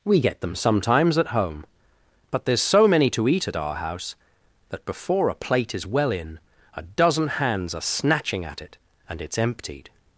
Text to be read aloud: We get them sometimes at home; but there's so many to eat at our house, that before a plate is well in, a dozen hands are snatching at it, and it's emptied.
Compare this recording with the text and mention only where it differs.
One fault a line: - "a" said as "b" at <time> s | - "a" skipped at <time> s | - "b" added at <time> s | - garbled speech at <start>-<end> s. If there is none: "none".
none